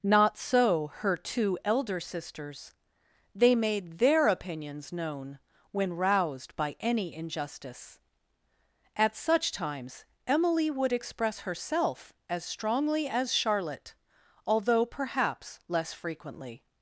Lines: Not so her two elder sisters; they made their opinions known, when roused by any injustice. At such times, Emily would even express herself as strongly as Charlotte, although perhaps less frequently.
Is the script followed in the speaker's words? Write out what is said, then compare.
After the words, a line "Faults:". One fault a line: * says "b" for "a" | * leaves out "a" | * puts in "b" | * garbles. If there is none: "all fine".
Not so her two elder sisters; they made their opinions known, when roused by any injustice. At such times, Emily would express herself as strongly as Charlotte, although perhaps less frequently.
Faults:
* leaves out "even"